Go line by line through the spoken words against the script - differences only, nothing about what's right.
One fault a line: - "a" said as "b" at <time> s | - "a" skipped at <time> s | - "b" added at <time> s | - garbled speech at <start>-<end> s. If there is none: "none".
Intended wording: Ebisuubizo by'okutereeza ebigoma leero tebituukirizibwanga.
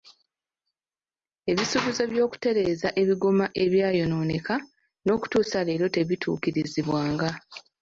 - "ebyayonooneka n'okutuusa" added at 3.6 s